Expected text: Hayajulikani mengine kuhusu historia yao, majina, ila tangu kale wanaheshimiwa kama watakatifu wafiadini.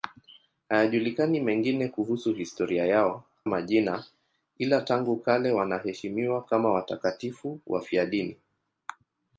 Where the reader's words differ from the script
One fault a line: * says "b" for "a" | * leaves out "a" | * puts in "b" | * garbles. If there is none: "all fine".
all fine